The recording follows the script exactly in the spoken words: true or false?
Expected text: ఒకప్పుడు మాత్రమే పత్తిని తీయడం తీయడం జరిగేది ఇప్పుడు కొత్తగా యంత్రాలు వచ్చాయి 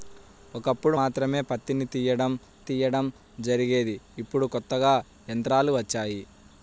true